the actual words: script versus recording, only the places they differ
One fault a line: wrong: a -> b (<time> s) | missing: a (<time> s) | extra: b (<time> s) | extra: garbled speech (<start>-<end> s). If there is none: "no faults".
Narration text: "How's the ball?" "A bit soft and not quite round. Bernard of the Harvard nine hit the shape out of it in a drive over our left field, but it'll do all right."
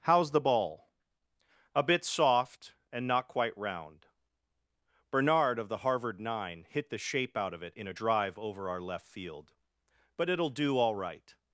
no faults